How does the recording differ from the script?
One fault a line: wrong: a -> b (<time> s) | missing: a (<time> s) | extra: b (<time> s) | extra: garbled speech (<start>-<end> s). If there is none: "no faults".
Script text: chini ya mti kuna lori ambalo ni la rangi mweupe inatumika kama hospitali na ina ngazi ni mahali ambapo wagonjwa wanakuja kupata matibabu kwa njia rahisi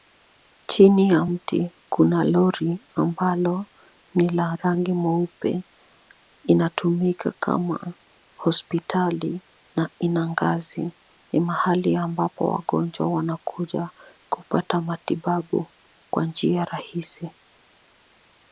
no faults